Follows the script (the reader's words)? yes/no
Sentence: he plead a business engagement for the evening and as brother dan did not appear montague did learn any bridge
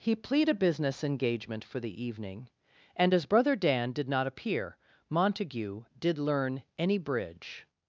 yes